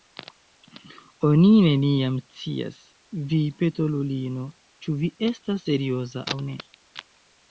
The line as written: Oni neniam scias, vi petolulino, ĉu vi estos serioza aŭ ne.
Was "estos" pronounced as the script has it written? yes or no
no